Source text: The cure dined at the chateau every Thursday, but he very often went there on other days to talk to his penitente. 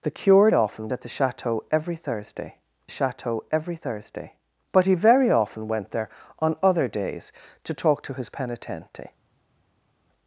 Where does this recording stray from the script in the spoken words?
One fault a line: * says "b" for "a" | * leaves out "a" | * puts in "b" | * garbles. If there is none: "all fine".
* says "often" for "dined"
* puts in "chateau every Thursday"